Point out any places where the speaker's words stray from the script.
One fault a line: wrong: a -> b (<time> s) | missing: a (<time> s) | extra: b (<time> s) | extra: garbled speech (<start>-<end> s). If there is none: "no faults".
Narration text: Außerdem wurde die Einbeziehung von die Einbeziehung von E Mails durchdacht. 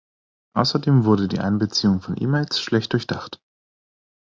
missing: die Einbeziehung von (2.2 s)
extra: schlecht (2.6 s)